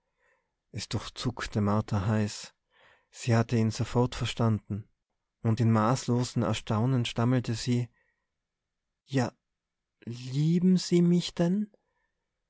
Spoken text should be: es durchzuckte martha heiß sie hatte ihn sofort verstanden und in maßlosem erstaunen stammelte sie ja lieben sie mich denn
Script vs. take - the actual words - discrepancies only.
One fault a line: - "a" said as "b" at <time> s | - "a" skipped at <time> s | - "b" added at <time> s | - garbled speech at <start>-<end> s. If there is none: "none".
none